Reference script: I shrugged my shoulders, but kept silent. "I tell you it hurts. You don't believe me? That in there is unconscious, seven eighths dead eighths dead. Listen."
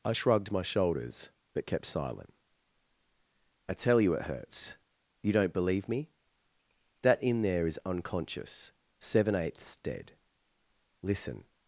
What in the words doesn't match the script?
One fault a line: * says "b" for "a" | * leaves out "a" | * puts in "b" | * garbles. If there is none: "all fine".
* leaves out "eighths dead"